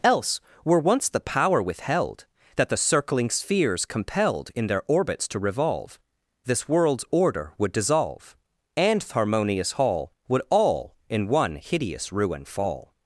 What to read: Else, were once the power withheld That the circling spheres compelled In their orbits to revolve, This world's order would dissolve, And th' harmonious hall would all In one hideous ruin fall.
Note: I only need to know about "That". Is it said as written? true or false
true